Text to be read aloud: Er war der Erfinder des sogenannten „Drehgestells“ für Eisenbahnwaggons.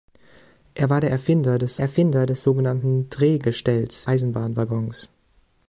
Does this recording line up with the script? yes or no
no